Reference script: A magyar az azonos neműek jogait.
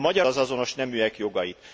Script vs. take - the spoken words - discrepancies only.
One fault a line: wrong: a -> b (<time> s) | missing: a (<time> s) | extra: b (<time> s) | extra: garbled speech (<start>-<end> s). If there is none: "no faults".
no faults